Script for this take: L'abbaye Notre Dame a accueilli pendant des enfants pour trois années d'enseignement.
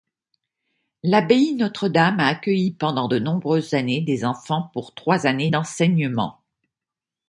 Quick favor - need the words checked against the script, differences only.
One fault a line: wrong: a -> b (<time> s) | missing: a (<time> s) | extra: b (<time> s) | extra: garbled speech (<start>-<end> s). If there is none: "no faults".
extra: de nombreuses années (3.0 s)